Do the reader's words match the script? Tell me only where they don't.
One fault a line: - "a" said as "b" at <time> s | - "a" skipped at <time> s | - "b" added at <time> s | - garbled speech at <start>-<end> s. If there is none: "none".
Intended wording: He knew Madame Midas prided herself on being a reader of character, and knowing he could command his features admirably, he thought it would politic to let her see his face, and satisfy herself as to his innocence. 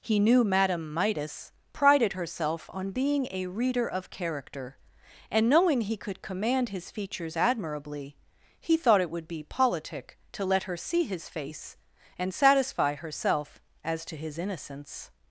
- "be" added at 9.3 s